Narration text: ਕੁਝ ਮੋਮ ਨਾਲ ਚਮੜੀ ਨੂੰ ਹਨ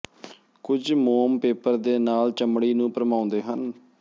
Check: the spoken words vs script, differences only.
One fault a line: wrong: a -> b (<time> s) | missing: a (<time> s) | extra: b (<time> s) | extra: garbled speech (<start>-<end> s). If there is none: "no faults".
extra: ਪੇਪਰ ਦੇ (1.4 s)
extra: ਭਰਮਾਉਂਦੇ (2.9 s)